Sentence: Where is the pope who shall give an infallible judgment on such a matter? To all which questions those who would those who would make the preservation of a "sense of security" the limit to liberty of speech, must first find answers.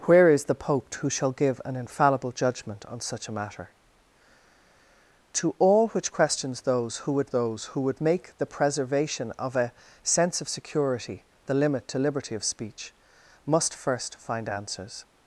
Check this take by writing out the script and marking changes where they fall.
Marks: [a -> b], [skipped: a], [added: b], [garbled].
Where is the pope who shall give an infallible judgment on such a matter? To all which questions those who would those who would make the preservation of a "sense of security" the limit to liberty of speech, must first find answers.